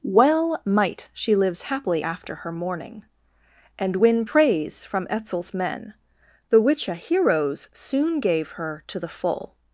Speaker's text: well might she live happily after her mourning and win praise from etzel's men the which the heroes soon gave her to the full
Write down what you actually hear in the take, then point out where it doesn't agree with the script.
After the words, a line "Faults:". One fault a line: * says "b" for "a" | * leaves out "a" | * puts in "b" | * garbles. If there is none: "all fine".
well might she lives happily after her mourning and win praise from etzel's men the which a heroes soon gave her to the full
Faults:
* says "lives" for "live"
* says "a" for "the"